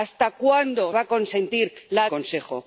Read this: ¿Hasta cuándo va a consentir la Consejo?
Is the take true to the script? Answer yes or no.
yes